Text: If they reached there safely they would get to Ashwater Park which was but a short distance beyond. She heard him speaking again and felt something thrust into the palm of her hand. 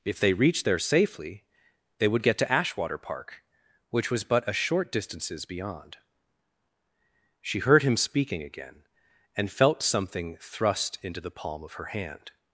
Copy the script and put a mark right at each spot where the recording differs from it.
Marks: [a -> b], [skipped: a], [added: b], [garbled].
If they reached there safely they would get to Ashwater Park which was but a short [distance -> distances] beyond. She heard him speaking again and felt something thrust into the palm of her hand.